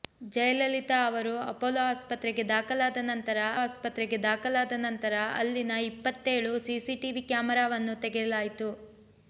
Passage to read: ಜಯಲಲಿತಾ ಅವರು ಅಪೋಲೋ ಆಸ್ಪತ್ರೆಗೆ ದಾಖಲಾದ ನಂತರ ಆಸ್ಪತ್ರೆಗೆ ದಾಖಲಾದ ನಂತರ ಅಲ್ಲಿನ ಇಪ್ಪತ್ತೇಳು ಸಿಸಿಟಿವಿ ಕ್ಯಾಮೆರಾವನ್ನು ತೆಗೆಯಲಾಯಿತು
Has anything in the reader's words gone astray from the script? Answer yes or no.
no